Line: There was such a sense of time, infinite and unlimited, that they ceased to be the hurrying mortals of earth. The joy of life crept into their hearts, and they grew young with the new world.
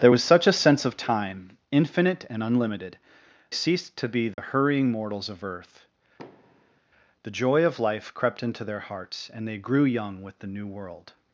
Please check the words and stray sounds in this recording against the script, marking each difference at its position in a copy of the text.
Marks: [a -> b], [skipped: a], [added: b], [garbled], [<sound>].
There was such a sense of time, infinite and unlimited, [skipped: that they] ceased to be the [dropout] hurrying mortals of earth. [thud] The joy of life crept into their hearts, and they grew young with the new world.